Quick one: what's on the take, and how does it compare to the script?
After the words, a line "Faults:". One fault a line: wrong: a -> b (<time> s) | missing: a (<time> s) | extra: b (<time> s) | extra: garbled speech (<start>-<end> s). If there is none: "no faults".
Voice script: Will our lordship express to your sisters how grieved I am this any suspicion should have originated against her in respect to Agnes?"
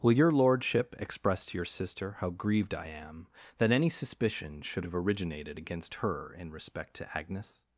Will your lordship express to your sister how grieved I am that any suspicion should have originated against her in respect to Agnes?"
Faults:
wrong: our -> your (0.1 s)
wrong: sisters -> sister (1.6 s)
wrong: this -> that (3.6 s)